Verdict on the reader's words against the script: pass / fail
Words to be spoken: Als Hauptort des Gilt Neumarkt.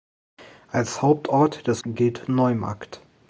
pass